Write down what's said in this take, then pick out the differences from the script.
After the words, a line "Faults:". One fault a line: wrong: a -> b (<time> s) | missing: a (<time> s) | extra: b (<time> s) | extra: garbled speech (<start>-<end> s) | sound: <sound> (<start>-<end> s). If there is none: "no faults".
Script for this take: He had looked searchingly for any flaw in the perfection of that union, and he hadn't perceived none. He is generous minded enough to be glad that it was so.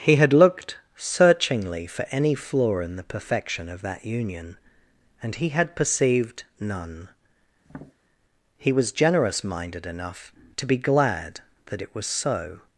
He had looked searchingly for any flaw in the perfection of that union, and he had perceived none. He was generous minded enough to be glad that it was so.
Faults:
wrong: hadn't -> had (5.5 s)
sound: tap (7.6-7.9 s)
wrong: is -> was (8.7 s)